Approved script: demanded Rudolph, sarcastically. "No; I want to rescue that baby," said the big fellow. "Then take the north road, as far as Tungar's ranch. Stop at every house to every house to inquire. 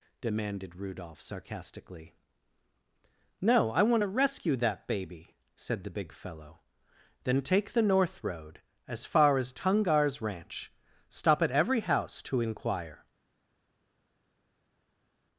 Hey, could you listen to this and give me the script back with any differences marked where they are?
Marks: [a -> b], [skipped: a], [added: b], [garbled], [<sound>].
demanded Rudolph, sarcastically. "No; I want to rescue that baby," said the big fellow. "Then take the north road, as far as Tungar's ranch. Stop at every house to [skipped: every house to] inquire.